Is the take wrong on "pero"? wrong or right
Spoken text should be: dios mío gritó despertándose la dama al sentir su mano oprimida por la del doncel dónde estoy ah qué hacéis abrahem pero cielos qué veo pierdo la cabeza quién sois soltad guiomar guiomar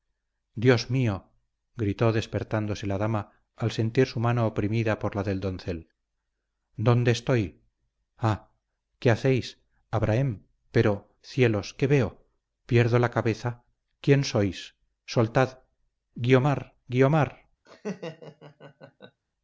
right